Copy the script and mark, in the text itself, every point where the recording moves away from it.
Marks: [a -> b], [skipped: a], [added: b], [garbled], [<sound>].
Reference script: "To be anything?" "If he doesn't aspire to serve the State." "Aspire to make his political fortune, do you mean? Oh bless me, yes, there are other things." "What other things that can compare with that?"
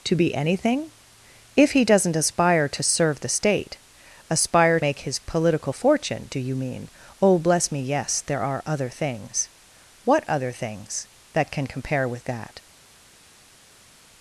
"To be anything?" "If he doesn't aspire to serve the State." "Aspire [skipped: to] make his political fortune, do you mean? Oh bless me, yes, there are other things." "What other things that can compare with that?"